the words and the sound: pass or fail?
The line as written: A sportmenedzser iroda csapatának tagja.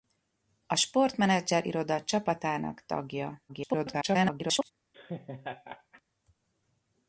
fail